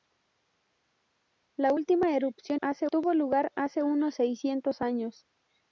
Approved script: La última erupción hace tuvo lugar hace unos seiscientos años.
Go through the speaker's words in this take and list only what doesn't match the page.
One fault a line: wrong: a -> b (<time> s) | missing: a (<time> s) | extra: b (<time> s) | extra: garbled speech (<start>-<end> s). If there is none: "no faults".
no faults